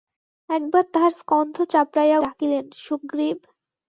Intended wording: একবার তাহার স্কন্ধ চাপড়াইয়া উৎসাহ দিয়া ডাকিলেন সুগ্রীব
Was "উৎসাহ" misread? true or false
true